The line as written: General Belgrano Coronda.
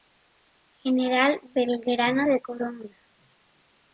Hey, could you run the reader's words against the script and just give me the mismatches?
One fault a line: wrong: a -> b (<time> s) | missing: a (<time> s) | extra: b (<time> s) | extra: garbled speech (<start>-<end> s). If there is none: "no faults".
extra: de (2.2 s)